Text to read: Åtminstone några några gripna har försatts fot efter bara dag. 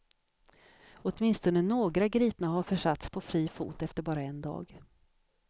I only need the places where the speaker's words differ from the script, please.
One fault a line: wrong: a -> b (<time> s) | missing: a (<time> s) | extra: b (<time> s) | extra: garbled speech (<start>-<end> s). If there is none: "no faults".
missing: några (2.1 s)
extra: på fri (3.1 s)
extra: en (4.2 s)